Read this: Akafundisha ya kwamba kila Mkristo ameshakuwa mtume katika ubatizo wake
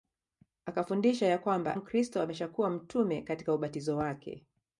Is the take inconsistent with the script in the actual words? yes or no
yes